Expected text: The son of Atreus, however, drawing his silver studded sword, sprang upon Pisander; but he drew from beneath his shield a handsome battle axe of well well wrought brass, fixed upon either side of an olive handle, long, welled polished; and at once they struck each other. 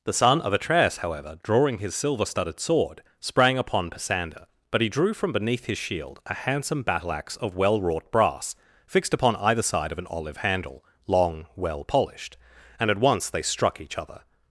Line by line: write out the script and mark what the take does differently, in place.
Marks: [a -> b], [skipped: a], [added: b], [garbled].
The son of Atreus, however, drawing his silver studded sword, sprang upon Pisander; but he drew from beneath his shield a handsome battle axe of well [skipped: well] wrought brass, fixed upon either side of an olive handle, long, [welled -> well] polished; and at once they struck each other.